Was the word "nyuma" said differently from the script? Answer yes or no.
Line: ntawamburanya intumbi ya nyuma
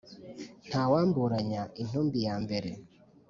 yes